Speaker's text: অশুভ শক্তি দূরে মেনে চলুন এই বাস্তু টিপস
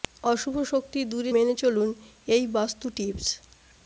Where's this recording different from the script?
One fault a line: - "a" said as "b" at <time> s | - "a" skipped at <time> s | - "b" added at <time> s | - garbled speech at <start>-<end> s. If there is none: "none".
none